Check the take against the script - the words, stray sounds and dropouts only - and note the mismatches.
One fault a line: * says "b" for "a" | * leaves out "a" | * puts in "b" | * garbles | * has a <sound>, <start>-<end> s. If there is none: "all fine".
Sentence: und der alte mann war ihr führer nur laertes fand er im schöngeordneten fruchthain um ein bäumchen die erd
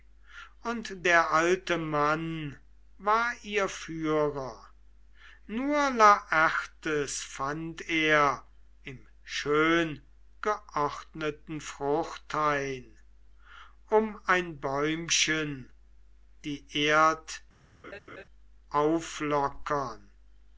* has a laugh, 17.8-18.2 s